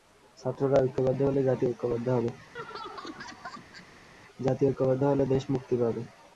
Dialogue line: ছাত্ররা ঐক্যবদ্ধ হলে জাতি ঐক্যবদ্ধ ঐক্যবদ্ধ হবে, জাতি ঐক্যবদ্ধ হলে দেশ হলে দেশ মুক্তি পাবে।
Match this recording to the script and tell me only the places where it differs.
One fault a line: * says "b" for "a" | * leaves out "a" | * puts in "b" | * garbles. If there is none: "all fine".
* leaves out "ঐক্যবদ্ধ"
* leaves out "হলে দেশ"